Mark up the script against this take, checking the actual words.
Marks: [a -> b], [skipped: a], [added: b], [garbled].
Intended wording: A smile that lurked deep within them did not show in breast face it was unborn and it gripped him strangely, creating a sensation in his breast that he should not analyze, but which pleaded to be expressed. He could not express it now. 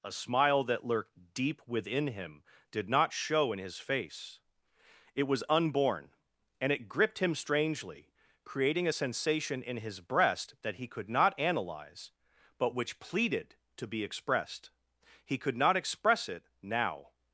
A smile that lurked deep within [them -> him] did not show in [breast -> his] face it was unborn and it gripped him strangely, creating a sensation in his breast that he [should -> could] not analyze, but which pleaded to be expressed. He could not express it now.